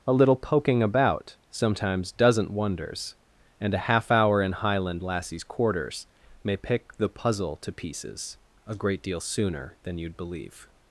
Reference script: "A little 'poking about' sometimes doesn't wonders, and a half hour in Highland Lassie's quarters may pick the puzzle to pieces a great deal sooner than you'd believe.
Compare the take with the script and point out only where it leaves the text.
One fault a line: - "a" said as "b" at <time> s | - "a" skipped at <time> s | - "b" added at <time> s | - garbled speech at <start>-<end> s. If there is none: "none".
none